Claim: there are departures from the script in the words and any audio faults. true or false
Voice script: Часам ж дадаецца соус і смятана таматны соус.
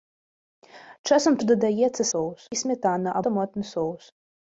false